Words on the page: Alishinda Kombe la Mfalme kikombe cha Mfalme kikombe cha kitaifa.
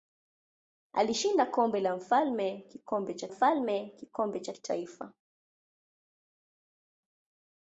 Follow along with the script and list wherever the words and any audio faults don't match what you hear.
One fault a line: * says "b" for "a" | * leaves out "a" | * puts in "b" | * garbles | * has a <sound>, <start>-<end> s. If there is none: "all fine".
all fine